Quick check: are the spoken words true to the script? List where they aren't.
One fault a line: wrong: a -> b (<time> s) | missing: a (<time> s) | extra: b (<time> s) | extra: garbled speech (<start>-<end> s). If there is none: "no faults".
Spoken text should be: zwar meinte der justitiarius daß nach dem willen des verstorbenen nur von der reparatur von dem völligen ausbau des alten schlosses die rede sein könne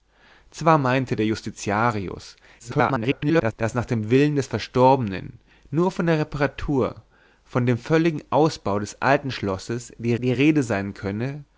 extra: garbled speech (2.6-3.5 s)
extra: die (10.2 s)